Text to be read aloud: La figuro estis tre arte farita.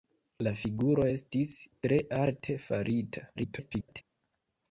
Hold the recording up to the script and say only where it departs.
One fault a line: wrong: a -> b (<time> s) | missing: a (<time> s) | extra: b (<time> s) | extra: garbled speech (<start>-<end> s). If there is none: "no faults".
extra: garbled speech (3.4-4.0 s)